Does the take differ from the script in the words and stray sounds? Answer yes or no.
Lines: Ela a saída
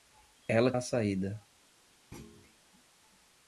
yes